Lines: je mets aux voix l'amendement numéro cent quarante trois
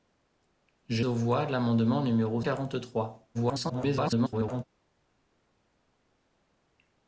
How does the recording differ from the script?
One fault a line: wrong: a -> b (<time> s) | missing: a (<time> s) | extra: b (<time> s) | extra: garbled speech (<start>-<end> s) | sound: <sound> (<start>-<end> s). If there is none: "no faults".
missing: mets (1.1 s)
missing: cent (2.4 s)
extra: garbled speech (3.3-4.6 s)